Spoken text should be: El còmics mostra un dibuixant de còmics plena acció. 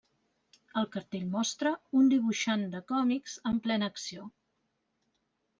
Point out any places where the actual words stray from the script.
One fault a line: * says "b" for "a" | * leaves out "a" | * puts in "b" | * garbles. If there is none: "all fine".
* says "cartell" for "còmics"
* puts in "en"